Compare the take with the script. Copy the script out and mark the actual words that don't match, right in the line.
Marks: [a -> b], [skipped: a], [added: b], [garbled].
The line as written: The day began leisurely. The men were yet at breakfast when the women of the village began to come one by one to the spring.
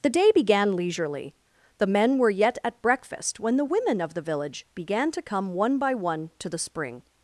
The day began leisurely. The men were yet at breakfast when the women of the village began to come one by one to the spring.